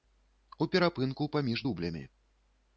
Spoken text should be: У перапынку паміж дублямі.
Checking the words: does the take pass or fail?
pass